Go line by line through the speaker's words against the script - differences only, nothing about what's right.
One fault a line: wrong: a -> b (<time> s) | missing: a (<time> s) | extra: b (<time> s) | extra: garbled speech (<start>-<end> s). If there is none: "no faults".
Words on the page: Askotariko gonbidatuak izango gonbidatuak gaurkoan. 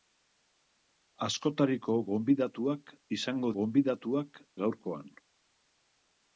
no faults